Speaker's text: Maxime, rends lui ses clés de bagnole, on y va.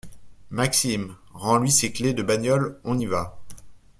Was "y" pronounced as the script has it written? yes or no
yes